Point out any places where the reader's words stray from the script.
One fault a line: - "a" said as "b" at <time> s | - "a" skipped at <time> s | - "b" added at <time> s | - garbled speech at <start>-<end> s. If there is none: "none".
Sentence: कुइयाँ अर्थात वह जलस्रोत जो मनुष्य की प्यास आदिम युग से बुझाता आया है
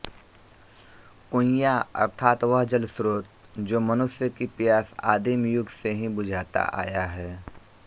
- "ही" added at 5.9 s